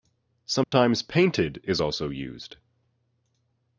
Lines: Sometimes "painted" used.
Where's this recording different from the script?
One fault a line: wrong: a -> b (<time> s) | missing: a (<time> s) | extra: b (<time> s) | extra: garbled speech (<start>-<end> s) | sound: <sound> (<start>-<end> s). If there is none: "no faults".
sound: dropout (0.6-0.7 s)
extra: is also (1.6 s)